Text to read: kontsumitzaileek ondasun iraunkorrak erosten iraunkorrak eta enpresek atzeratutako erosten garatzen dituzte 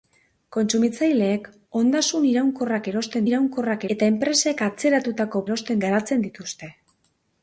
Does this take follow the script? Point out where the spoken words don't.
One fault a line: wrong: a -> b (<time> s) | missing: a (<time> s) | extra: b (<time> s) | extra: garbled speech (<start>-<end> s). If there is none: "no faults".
no faults